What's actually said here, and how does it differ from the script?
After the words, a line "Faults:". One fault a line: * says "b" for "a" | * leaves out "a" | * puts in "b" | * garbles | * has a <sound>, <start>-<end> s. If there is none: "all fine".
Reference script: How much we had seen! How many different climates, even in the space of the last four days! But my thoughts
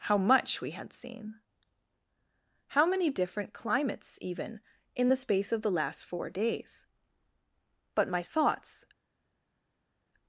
How much we had seen! How many different climates, even in the space of the last four days! But my thoughts
Faults:
all fine